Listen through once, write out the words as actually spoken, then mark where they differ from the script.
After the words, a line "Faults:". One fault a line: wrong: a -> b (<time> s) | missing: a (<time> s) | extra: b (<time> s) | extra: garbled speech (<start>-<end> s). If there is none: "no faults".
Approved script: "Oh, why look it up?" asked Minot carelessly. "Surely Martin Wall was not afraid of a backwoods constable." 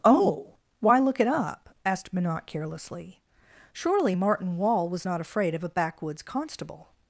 "Oh, why look it up?" asked Minot carelessly. "Surely Martin Wall was not afraid of a backwoods constable."
Faults:
no faults